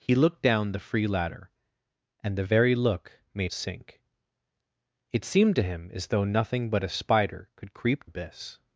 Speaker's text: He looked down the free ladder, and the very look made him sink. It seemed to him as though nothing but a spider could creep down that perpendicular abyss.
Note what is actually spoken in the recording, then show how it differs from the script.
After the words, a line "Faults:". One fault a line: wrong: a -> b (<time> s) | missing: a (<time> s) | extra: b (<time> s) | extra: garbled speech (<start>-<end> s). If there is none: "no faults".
He looked down the free ladder, and the very look made sink. It seemed to him as though nothing but a spider could creep abyss.
Faults:
missing: him (3.5 s)
missing: down that perpendicular (8.1 s)